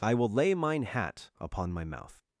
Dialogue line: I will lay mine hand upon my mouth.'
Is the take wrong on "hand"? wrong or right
wrong